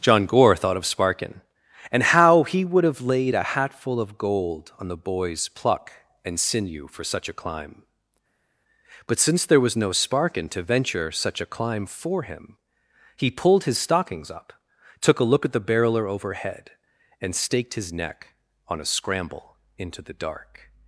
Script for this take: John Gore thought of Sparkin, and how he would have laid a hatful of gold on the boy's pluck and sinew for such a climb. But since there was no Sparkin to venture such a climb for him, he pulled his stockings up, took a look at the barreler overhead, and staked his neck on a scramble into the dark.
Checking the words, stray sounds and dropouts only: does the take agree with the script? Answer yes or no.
yes